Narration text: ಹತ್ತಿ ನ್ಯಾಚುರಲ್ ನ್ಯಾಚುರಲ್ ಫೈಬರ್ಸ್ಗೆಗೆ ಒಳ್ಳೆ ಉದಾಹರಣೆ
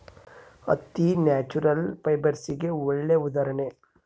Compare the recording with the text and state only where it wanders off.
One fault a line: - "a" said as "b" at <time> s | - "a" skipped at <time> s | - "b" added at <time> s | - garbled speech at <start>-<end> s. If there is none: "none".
- "ನ್ಯಾಚುರಲ್" skipped at 1.8 s